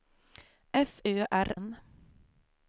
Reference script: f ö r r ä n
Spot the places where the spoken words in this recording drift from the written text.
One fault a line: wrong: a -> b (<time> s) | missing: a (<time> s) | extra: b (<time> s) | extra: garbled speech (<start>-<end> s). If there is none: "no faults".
missing: r ä (1.5 s)